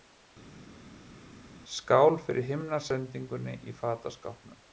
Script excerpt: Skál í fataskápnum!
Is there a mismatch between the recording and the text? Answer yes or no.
yes